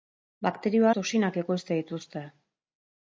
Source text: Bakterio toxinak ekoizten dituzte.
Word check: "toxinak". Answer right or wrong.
right